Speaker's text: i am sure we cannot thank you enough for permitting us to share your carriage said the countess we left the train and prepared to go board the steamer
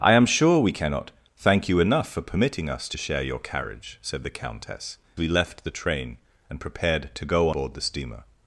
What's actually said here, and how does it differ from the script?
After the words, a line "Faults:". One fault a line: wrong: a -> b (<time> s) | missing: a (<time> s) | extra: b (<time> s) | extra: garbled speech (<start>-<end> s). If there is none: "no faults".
i am sure we cannot thank you enough for permitting us to share your carriage said the countess we left the train and prepared to go board the steamer
Faults:
no faults